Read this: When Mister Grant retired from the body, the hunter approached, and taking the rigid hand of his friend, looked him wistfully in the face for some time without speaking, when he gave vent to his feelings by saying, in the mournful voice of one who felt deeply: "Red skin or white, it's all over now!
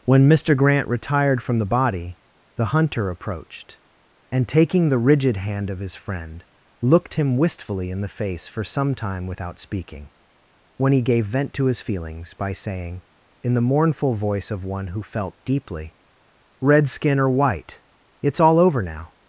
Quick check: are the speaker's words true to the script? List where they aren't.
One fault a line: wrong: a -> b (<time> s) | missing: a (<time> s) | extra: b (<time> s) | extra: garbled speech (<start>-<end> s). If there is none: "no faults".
no faults